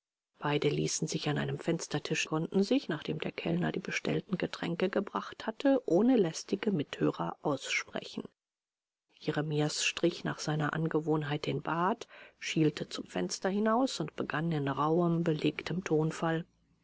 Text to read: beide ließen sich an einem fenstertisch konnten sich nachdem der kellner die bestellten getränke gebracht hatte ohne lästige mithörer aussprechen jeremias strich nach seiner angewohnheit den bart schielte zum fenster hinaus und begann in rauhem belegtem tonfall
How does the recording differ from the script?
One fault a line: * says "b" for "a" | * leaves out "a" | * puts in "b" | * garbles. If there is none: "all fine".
all fine